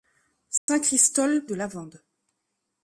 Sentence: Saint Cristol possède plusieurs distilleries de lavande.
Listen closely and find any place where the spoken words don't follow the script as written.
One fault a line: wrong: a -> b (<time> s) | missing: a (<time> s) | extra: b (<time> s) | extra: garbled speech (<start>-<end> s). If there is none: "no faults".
missing: possède plusieurs distilleries (1.4 s)